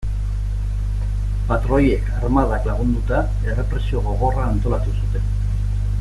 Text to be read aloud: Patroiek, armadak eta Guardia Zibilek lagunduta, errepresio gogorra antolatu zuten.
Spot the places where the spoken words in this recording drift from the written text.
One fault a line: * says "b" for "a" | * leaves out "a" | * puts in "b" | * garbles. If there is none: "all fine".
* leaves out "eta Guardia Zibilek"